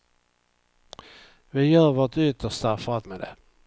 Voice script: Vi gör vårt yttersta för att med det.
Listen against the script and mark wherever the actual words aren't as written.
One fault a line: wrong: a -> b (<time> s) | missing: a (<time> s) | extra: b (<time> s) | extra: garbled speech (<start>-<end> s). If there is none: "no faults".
no faults